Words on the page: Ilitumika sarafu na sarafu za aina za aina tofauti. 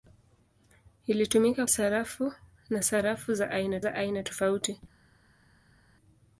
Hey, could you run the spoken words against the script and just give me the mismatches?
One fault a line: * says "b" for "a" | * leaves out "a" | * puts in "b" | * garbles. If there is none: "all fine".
all fine